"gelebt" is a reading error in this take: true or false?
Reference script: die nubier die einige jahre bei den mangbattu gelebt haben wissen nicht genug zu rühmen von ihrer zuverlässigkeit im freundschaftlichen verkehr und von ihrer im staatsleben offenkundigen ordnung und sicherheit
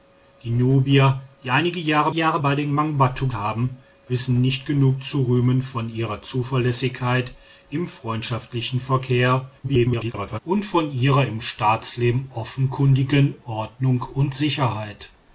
true